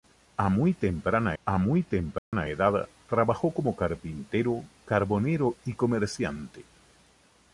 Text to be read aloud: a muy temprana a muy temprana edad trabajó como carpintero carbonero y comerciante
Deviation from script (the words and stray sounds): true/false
true